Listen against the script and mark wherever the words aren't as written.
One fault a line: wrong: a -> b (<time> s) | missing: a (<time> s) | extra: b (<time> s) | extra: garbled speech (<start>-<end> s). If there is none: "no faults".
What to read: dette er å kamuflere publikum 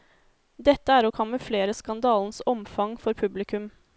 extra: skandalens omfang for (1.8 s)